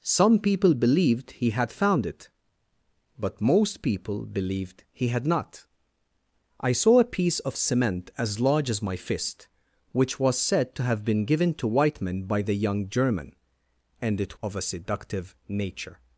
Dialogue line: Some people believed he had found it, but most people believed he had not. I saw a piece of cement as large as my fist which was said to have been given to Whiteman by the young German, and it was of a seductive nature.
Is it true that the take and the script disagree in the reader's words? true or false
true